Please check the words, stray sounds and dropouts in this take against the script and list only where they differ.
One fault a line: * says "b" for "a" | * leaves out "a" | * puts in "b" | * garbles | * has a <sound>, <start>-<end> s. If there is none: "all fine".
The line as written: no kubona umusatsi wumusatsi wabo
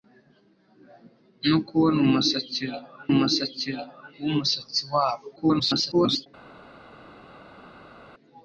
* puts in "umusatsi"
* garbles